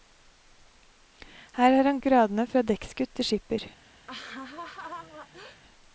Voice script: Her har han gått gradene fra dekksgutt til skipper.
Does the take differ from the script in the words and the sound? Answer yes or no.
yes